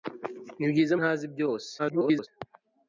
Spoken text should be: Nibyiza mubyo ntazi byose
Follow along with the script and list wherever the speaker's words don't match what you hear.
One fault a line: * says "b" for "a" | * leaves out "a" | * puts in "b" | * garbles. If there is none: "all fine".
* leaves out "mubyo"
* garbles